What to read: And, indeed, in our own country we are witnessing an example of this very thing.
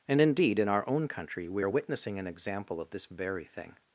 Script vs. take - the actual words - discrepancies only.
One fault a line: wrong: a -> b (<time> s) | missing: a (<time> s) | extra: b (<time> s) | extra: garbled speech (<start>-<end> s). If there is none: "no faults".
no faults